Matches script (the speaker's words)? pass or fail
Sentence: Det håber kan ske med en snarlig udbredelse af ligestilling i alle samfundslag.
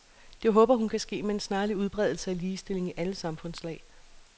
fail